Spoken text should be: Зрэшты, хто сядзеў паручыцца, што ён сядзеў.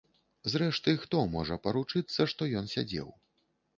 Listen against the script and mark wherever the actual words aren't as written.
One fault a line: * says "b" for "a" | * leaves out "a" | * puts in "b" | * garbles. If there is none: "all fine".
* says "можа" for "сядзеў"